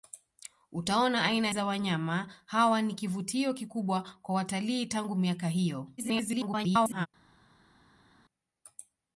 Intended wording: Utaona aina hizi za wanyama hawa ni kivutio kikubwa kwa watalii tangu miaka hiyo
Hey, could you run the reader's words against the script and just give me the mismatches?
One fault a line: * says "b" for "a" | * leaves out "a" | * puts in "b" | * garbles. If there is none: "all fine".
* leaves out "hizi"
* garbles